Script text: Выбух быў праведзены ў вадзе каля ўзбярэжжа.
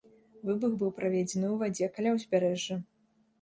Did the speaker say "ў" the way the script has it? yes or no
yes